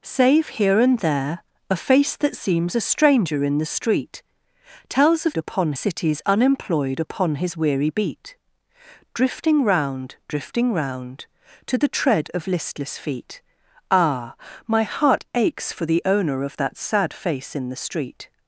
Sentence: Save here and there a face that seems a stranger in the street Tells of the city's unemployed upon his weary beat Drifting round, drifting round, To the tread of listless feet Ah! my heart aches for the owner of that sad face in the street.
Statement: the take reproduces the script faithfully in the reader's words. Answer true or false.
false